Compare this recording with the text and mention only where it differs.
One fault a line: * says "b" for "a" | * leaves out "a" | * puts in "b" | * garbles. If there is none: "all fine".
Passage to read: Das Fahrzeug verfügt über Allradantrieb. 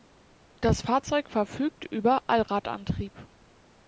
all fine